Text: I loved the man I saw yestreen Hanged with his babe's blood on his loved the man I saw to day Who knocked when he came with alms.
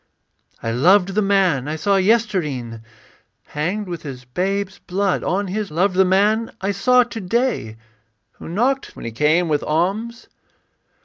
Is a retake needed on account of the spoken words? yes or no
no